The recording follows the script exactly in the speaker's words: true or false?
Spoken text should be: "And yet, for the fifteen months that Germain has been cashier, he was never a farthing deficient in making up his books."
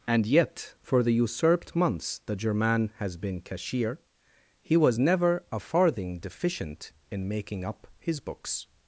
false